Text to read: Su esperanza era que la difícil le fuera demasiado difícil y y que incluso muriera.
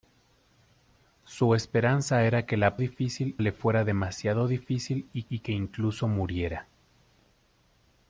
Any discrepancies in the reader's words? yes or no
no